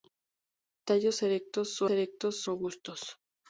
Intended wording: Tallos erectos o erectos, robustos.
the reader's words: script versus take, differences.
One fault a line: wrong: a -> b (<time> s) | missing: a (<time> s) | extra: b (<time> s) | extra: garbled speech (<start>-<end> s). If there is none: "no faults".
no faults